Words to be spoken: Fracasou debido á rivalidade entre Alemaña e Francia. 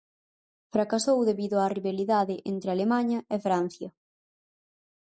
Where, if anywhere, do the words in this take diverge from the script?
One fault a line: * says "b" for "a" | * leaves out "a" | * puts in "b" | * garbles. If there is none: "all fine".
all fine